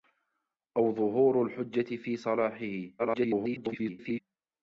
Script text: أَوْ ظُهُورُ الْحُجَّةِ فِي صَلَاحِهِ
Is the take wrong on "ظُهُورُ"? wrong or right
right